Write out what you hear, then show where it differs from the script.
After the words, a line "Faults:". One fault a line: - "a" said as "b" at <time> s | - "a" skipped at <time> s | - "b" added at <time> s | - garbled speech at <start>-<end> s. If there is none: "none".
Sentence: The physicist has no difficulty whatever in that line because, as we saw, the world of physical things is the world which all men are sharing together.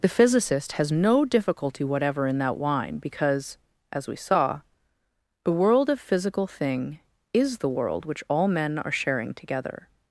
The physicist has no difficulty whatever in that wine because, as we saw, the world of physical thing is the world which all men are sharing together.
Faults:
- "line" said as "wine" at 2.6 s
- "things" said as "thing" at 6.5 s